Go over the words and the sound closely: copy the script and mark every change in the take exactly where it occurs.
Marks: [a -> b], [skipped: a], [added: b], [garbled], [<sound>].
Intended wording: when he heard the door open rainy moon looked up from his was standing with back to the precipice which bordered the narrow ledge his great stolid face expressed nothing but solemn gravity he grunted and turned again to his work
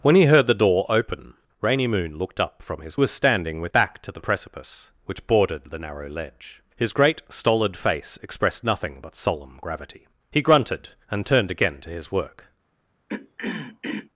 when he heard the door open rainy moon looked up from his was standing with back to the precipice which bordered the narrow ledge his great stolid face expressed nothing but solemn gravity he grunted and turned again to his work [throat clearing]